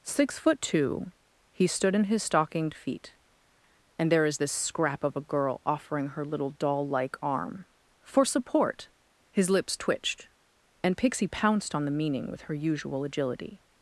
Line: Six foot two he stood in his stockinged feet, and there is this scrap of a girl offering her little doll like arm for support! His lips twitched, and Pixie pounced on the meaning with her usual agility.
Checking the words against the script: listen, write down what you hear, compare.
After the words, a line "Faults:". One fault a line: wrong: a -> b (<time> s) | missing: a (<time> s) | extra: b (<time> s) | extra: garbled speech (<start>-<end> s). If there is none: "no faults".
Six foot two he stood in his stockinged feet, and there is this scrap of a girl offering her little doll like arm for support! His lips twitched, and Pixie pounced on the meaning with her usual agility.
Faults:
no faults